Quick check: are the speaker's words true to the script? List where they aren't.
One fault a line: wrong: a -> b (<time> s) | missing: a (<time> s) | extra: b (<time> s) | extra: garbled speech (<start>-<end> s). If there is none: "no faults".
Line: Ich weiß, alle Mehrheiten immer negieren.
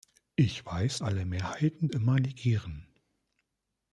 no faults